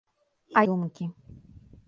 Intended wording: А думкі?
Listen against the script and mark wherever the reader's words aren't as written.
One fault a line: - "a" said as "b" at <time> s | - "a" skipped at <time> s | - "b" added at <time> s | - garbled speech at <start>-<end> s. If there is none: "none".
none